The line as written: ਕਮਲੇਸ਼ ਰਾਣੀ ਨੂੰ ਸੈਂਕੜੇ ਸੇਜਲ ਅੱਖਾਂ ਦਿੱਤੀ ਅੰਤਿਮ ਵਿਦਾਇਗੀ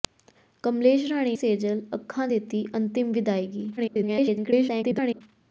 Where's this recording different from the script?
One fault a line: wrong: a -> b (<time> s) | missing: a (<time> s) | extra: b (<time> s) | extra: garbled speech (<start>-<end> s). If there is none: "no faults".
missing: ਨੂੰ ਸੈਂਕੜੇ (1.4 s)
extra: garbled speech (3.8-5.2 s)